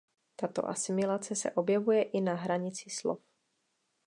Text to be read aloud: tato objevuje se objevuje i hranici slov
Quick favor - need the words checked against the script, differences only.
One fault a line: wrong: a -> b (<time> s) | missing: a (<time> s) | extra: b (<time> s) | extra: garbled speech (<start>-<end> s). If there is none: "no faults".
wrong: objevuje -> asimilace (0.7 s)
extra: na (2.2 s)